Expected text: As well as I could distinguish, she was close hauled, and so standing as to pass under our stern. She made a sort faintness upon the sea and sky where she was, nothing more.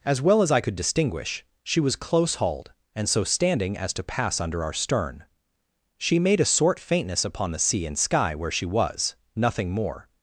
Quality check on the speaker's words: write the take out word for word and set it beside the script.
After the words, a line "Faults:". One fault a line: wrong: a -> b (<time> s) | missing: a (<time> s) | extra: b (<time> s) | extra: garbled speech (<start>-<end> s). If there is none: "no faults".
As well as I could distinguish, she was close hauled, and so standing as to pass under our stern. She made a sort faintness upon the sea and sky where she was, nothing more.
Faults:
no faults